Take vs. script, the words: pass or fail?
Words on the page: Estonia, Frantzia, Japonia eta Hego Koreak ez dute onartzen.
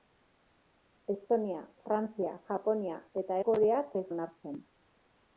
fail